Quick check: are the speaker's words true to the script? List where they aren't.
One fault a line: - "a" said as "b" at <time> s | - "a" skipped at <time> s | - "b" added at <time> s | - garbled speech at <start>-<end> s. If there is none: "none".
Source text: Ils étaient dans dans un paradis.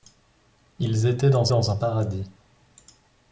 none